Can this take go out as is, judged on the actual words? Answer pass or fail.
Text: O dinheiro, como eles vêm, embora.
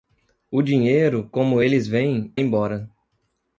pass